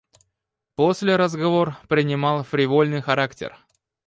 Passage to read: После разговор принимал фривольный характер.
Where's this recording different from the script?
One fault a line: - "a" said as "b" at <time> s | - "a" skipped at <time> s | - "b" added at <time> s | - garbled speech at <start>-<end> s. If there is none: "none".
none